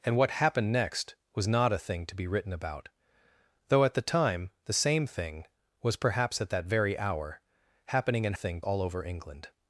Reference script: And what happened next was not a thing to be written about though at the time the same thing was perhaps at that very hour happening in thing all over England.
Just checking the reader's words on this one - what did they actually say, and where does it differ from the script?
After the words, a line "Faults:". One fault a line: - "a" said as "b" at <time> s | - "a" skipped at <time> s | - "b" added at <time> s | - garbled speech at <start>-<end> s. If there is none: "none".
And what happened next was not a thing to be written about though at the time the same thing was perhaps at that very hour happening in thing all over England.
Faults:
none